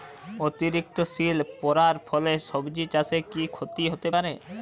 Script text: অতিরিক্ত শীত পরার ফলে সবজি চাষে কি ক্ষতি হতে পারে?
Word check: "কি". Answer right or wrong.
right